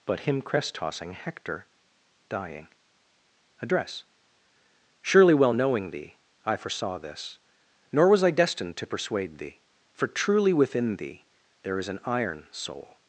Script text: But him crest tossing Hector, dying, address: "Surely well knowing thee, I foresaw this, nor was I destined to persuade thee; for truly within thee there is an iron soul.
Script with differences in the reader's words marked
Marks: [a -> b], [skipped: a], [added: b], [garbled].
But him crest tossing Hector, dying, address: "Surely well knowing thee, I foresaw this, nor was I destined to persuade thee; for truly within thee there is an iron soul.